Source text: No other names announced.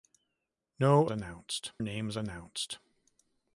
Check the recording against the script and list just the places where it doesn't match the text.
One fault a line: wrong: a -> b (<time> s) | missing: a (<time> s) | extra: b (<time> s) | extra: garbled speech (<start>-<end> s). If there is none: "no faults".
wrong: other -> announced (1.1 s)